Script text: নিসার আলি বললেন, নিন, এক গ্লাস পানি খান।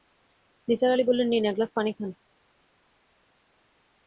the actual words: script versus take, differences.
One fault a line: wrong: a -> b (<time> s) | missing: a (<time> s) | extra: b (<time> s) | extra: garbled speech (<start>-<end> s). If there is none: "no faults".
no faults